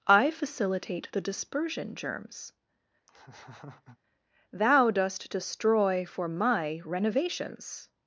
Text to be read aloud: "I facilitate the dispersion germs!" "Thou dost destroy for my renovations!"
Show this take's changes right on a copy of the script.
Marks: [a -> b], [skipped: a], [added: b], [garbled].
"I facilitate the dispersion germs!" "Thou dost destroy for my renovations!"